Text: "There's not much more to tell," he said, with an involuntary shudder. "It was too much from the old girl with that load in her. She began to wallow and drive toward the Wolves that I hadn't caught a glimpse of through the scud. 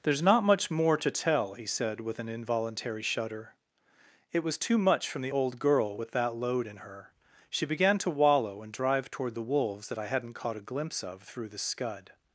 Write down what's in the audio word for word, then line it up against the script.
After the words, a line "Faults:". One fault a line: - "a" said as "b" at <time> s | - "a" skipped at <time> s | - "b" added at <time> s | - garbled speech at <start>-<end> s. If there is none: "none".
"There's not much more to tell," he said, with an involuntary shudder. "It was too much from the old girl with that load in her. She began to wallow and drive toward the Wolves that I hadn't caught a glimpse of through the scud.
Faults:
none